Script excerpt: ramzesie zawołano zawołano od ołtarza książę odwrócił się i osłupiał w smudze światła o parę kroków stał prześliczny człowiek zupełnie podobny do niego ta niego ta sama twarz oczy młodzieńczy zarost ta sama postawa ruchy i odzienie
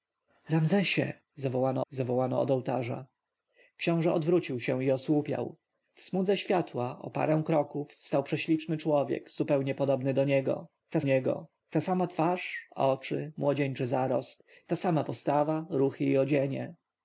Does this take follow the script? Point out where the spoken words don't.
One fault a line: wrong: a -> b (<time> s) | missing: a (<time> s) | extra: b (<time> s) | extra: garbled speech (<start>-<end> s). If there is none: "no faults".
no faults